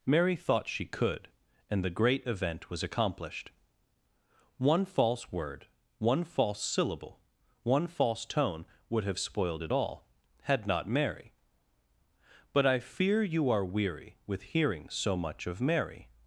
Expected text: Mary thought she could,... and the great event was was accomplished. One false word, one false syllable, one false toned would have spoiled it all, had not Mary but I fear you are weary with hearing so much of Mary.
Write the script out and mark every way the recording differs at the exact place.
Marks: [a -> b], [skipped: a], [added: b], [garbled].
Mary thought she could,... and the great event was [skipped: was] accomplished. One false word, one false syllable, one false [toned -> tone] would have spoiled it all, had not Mary but I fear you are weary with hearing so much of Mary.